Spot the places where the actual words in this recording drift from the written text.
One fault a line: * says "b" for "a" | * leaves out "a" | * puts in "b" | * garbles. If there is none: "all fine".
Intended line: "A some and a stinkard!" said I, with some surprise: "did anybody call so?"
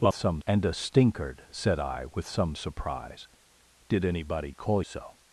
all fine